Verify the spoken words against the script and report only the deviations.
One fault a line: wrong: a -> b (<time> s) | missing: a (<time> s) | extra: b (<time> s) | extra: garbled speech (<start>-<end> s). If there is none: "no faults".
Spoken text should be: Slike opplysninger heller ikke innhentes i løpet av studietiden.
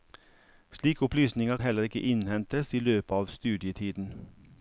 no faults